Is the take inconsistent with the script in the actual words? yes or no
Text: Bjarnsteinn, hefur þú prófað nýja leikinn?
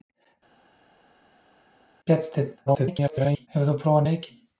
yes